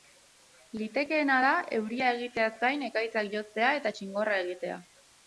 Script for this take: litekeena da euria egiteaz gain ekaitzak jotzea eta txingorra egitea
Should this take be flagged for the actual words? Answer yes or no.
no